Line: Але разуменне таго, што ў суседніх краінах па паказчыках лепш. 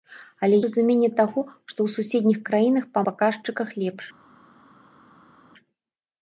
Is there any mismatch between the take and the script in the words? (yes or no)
no